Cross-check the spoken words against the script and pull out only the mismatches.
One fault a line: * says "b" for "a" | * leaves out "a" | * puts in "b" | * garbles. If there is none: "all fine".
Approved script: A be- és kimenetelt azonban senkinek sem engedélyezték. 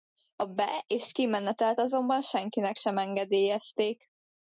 all fine